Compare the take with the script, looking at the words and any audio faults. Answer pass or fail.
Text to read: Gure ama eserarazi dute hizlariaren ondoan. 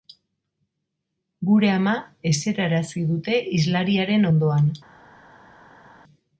pass